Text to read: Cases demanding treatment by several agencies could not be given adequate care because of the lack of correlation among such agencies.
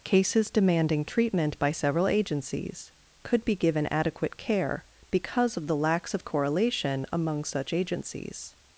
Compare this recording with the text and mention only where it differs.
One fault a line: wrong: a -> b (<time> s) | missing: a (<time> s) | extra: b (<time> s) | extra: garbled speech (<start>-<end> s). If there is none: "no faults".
missing: not (3.4 s)
wrong: lack -> lacks (5.8 s)